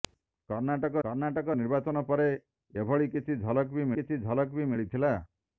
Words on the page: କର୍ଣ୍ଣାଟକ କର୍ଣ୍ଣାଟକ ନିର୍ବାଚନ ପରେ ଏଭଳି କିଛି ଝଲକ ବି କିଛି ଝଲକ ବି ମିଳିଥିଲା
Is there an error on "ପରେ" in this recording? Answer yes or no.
no